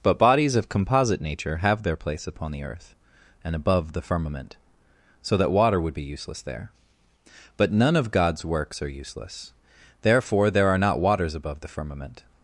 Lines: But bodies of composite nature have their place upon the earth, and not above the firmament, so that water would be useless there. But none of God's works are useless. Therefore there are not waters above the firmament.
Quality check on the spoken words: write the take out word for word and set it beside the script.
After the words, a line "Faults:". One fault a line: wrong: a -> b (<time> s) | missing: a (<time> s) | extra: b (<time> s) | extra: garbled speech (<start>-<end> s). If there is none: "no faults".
But bodies of composite nature have their place upon the earth, and above the firmament, so that water would be useless there. But none of God's works are useless. Therefore there are not waters above the firmament.
Faults:
missing: not (3.5 s)